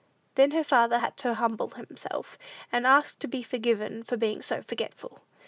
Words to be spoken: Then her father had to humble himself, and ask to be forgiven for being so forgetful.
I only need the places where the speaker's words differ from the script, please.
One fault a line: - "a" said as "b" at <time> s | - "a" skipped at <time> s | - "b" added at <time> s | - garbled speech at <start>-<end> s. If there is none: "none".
none